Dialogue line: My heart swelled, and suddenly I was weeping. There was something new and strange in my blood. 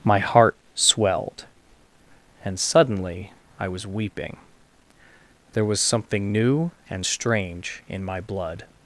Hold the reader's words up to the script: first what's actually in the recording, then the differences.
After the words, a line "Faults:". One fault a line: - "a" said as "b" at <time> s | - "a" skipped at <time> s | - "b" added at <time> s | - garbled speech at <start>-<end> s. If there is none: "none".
My heart swelled, and suddenly I was weeping. There was something new and strange in my blood.
Faults:
none